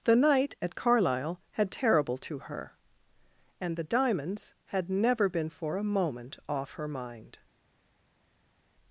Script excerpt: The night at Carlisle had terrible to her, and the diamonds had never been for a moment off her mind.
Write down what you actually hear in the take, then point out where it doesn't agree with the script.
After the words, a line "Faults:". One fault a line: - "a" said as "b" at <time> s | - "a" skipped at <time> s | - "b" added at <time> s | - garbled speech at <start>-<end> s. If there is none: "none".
The night at Carlisle had terrible to her, and the diamonds had never been for a moment off her mind.
Faults:
none